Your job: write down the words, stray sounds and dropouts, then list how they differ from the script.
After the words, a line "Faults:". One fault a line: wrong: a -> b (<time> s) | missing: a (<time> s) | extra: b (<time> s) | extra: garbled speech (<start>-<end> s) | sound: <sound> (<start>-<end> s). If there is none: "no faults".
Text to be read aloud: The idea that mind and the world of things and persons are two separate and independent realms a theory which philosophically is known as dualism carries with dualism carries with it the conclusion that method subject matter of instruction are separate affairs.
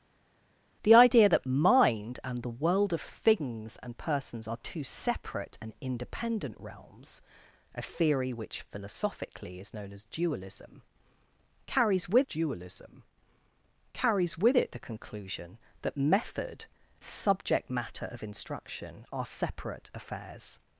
The idea that mind and the world of things and persons are two separate and independent realms a theory which philosophically is known as dualism carries with dualism carries with it the conclusion that method subject matter of instruction are separate affairs.
Faults:
no faults